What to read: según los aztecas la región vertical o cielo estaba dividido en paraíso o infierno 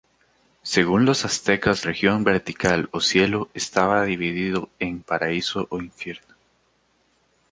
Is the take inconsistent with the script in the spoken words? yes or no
yes